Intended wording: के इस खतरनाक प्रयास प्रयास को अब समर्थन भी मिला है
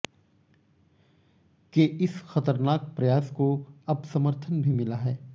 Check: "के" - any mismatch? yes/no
no